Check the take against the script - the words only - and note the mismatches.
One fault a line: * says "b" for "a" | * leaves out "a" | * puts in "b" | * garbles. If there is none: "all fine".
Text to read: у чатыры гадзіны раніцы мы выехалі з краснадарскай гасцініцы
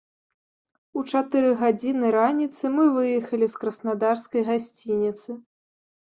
all fine